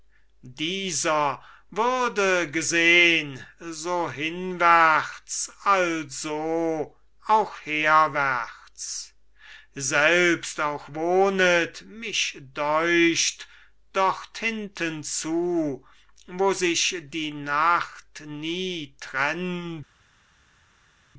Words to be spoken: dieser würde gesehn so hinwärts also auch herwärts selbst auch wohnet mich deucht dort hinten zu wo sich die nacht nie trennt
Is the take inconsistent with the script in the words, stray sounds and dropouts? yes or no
no